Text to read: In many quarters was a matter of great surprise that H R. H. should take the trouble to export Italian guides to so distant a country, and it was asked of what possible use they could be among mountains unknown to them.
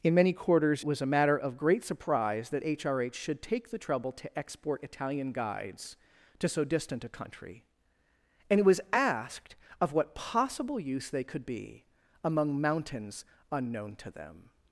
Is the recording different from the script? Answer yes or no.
no